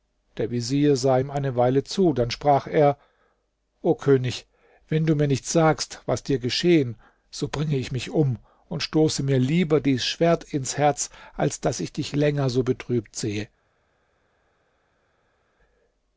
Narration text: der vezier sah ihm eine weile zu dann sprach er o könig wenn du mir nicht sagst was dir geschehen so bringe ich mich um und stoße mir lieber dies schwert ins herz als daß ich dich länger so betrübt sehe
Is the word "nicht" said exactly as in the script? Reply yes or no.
yes